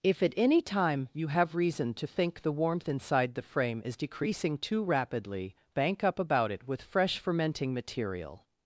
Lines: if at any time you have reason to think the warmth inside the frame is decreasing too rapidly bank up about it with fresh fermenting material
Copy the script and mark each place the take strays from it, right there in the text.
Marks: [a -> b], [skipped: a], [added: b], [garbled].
if at any time you have reason to think the warmth inside the frame is decreasing too rapidly bank up about it with fresh fermenting material